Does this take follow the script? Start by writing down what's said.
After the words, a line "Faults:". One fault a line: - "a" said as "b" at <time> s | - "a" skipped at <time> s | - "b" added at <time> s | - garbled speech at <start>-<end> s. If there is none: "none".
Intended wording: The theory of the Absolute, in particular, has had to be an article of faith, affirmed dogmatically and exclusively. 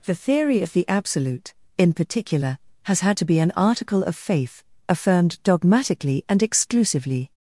The theory of the Absolute, in particular, has had to be an article of faith, affirmed dogmatically and exclusively.
Faults:
none